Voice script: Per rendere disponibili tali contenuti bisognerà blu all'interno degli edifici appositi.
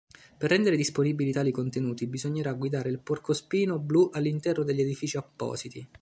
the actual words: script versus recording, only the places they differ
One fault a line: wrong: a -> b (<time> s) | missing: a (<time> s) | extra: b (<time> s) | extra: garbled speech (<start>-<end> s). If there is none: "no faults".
extra: guidare il porcospino (2.5 s)